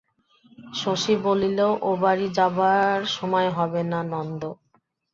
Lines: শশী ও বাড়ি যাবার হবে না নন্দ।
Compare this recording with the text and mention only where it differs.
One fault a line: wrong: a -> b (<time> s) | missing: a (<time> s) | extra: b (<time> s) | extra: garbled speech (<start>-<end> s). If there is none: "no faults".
extra: বলিল (1.2 s)
extra: সময় (3.1 s)